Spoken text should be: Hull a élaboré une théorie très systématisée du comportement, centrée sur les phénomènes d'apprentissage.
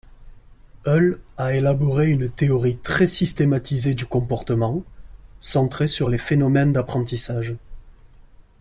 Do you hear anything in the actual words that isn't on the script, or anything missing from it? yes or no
no